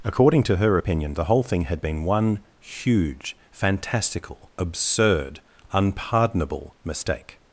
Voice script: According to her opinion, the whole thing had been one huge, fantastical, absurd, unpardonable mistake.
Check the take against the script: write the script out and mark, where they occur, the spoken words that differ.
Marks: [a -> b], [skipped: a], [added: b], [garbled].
According to her opinion, the whole thing had been one huge, fantastical, absurd, unpardonable mistake.